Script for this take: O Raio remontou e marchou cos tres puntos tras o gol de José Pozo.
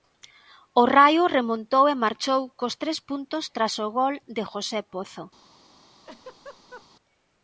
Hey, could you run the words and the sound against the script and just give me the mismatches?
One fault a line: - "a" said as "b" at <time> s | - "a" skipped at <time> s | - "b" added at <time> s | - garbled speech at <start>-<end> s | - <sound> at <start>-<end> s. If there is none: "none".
- laugh at 6.0-6.9 s